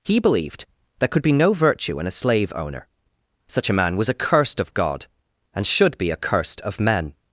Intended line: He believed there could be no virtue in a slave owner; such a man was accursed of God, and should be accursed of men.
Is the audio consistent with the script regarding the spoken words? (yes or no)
yes